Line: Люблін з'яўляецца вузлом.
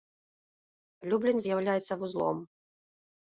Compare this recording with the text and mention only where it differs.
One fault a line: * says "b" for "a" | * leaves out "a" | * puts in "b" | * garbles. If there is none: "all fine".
all fine